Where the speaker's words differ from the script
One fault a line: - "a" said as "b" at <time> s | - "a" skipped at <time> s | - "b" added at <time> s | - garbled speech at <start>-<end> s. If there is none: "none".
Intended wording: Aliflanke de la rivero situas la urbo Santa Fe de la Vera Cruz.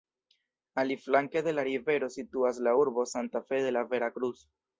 none